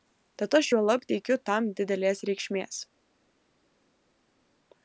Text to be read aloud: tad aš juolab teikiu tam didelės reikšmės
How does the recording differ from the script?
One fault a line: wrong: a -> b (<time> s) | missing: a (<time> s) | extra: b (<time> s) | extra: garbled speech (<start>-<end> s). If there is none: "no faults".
no faults